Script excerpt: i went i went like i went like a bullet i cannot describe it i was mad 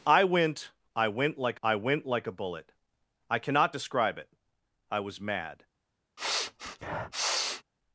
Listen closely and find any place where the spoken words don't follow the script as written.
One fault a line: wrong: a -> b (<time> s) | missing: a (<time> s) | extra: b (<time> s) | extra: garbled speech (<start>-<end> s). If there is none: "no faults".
no faults